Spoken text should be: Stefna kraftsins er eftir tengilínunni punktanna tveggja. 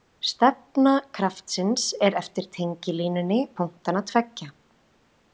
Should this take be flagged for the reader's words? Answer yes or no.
no